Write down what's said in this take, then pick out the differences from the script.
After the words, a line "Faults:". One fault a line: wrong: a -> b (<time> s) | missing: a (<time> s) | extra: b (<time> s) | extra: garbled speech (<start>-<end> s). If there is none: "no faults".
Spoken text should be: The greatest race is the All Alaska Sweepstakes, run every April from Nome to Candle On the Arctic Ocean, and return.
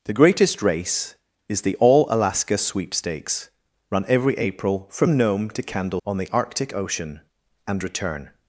The greatest race is the All Alaska Sweepstakes, run every April from Nome to Candle On the Arctic Ocean, and return.
Faults:
no faults